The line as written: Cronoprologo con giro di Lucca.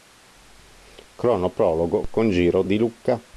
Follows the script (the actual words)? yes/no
yes